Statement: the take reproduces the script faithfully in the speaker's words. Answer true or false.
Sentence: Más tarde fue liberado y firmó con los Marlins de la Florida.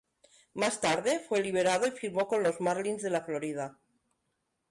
true